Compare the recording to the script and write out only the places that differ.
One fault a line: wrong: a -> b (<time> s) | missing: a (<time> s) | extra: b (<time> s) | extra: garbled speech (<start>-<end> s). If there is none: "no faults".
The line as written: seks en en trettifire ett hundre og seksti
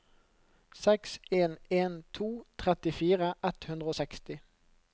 extra: to (2.2 s)